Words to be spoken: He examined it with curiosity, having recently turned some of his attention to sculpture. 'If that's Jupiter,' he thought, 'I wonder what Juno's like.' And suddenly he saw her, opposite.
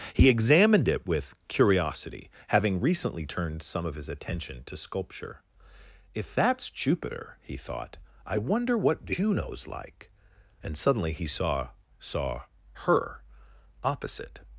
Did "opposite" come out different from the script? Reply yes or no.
no